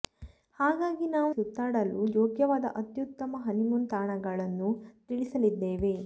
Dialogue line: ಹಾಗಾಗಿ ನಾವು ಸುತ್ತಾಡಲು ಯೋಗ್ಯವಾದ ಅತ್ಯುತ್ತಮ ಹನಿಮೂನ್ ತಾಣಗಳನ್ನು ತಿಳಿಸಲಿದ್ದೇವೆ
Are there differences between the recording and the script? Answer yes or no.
no